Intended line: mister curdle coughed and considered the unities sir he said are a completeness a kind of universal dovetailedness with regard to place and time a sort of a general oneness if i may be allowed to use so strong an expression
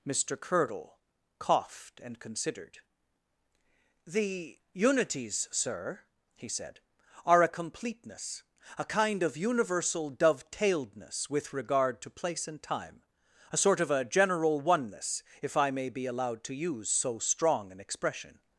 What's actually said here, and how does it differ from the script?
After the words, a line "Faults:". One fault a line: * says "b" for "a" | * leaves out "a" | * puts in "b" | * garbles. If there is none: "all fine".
mister curdle coughed and considered the unities sir he said are a completeness a kind of universal dovetailedness with regard to place and time a sort of a general oneness if i may be allowed to use so strong an expression
Faults:
all fine